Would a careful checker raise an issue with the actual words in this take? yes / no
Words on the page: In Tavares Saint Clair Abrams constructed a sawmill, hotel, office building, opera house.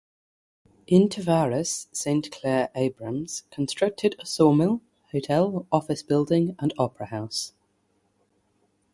yes